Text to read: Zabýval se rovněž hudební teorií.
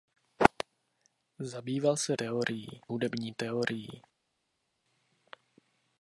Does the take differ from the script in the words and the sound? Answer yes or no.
yes